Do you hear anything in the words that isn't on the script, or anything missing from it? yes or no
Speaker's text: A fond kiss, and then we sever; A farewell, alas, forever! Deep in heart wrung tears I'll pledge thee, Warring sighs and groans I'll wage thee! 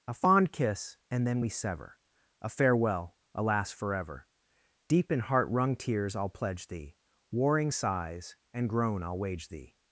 yes